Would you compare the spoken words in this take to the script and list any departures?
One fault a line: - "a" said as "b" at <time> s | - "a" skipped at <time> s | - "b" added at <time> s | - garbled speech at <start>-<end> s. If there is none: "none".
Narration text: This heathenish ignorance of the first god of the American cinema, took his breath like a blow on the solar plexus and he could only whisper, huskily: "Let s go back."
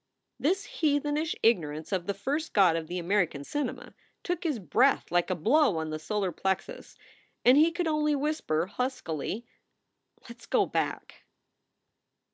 none